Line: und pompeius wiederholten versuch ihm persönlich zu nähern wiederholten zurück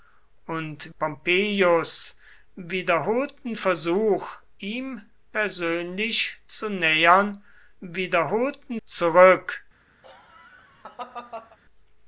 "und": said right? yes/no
yes